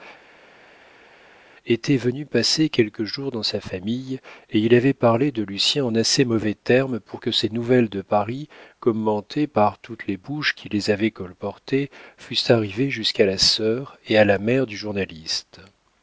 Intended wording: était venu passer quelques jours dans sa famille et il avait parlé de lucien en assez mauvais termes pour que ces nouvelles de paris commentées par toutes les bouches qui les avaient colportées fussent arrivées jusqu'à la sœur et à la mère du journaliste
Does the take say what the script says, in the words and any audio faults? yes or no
yes